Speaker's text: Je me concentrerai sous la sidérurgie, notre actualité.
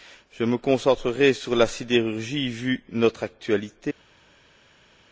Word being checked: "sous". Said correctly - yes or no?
no